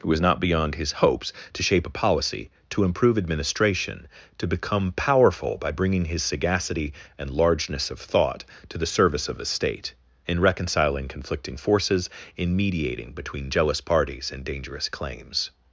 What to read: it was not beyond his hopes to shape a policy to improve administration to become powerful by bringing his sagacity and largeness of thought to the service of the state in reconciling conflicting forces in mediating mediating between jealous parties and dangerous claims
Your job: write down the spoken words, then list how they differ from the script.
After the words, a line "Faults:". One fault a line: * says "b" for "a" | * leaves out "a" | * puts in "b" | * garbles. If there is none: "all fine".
it was not beyond his hopes to shape a policy to improve administration to become powerful by bringing his sagacity and largeness of thought to the service of the state in reconciling conflicting forces in mediating between jealous parties and dangerous claims
Faults:
* leaves out "mediating"